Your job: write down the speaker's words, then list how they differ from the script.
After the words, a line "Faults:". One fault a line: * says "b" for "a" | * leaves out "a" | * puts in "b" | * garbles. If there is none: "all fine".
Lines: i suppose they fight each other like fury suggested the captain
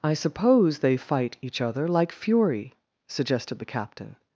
i suppose they fight each other like fury suggested the captain
Faults:
all fine